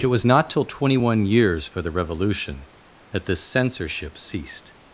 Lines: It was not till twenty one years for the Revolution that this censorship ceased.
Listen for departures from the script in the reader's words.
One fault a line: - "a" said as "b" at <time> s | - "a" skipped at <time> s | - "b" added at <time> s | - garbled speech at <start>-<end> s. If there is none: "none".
none